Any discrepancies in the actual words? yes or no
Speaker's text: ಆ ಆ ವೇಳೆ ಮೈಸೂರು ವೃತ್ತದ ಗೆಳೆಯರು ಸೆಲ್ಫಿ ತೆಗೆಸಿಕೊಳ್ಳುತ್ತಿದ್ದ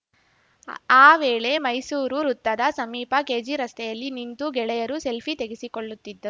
yes